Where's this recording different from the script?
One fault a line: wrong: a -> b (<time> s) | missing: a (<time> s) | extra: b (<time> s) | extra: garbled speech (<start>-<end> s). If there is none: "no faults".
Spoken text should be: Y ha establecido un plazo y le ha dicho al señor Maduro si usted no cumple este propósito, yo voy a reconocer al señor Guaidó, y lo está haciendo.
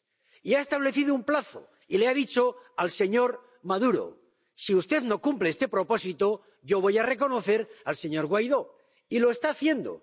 no faults